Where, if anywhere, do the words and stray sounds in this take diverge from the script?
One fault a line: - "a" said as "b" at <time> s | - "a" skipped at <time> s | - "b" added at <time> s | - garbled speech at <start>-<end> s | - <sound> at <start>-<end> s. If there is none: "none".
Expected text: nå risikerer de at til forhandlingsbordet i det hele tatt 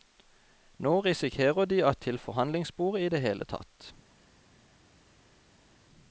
none